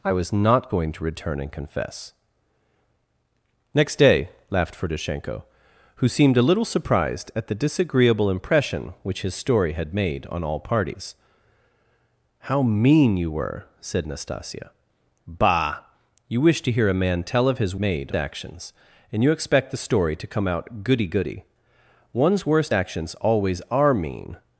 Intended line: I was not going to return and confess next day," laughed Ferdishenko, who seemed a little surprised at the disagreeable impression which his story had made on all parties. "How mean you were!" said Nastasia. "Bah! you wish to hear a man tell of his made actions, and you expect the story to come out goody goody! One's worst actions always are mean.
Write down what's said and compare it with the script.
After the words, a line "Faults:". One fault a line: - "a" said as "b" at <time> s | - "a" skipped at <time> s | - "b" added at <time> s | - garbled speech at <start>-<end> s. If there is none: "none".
I was not going to return and confess next day," laughed Ferdishenko, who seemed a little surprised at the disagreeable impression which his story had made on all parties. "How mean you were!" said Nastasia. "Bah! you wish to hear a man tell of his made actions, and you expect the story to come out goody goody! One's worst actions always are mean.
Faults:
none